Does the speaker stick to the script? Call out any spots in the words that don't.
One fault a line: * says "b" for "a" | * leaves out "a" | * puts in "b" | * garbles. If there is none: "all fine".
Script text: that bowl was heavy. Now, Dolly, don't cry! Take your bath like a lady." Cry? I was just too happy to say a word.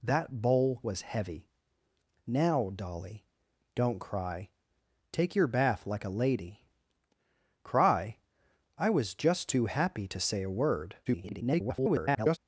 * garbles